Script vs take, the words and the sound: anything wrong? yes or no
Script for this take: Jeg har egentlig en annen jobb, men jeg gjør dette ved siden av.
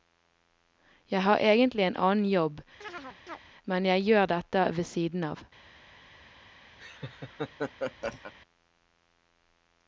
yes